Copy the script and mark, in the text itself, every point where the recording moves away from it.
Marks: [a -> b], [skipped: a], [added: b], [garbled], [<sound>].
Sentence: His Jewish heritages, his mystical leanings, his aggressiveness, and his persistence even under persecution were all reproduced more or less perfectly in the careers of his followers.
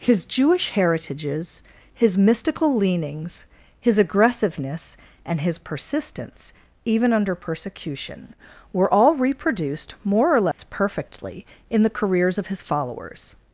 His Jewish heritages, his mystical leanings, his aggressiveness, and his persistence even under persecution were all reproduced more or less [dropout] perfectly in the careers of his followers.